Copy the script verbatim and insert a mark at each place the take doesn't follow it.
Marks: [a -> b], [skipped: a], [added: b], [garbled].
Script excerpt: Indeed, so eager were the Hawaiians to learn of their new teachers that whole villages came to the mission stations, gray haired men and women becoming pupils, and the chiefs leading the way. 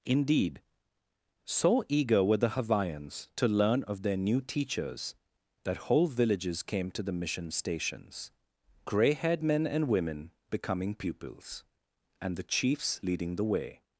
Indeed, so eager were the Hawaiians to learn of their new teachers that whole villages came to the mission stations, gray haired men and women becoming pupils, and the chiefs leading the way.